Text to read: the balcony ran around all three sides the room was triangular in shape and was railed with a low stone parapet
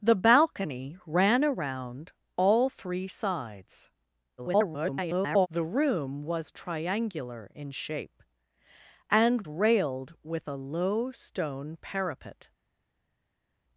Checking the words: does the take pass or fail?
fail